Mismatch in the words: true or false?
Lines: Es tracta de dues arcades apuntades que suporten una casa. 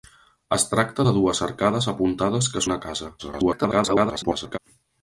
true